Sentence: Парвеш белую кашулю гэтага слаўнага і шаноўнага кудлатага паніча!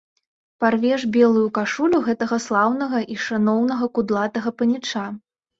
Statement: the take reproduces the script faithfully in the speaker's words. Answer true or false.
true